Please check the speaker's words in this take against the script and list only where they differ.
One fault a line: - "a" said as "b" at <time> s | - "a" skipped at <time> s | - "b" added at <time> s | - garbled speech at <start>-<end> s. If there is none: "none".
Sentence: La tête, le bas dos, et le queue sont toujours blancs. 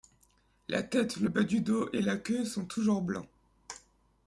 - "du" added at 1.4 s
- "le" said as "la" at 2.0 s